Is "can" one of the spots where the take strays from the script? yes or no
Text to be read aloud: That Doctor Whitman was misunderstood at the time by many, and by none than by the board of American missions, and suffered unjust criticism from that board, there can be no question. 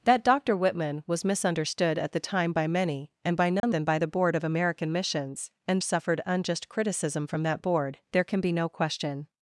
no